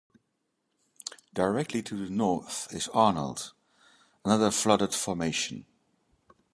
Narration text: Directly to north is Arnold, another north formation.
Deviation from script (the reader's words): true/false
true